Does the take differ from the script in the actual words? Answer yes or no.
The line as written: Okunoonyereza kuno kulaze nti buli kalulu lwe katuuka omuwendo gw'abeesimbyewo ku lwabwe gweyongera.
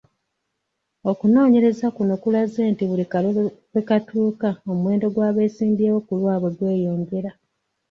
no